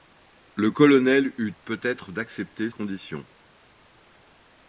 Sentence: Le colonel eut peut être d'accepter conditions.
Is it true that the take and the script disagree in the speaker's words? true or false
false